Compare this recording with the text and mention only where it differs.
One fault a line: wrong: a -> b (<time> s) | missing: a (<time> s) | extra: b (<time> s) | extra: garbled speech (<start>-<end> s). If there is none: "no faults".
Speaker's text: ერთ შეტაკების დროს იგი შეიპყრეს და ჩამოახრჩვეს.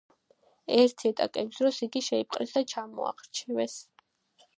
no faults